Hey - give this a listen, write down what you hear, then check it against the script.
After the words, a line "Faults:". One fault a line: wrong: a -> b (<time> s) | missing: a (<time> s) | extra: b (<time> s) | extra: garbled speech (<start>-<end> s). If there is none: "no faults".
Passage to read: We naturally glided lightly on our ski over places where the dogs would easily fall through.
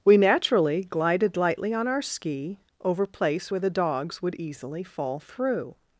We naturally glided lightly on our ski over place where the dogs would easily fall through.
Faults:
wrong: places -> place (3.0 s)